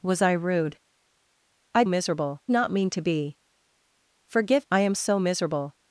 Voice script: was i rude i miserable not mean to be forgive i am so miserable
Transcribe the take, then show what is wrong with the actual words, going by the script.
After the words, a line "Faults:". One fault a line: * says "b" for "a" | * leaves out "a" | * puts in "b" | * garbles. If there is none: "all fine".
was i rude i miserable not mean to be forgive i am so miserable
Faults:
all fine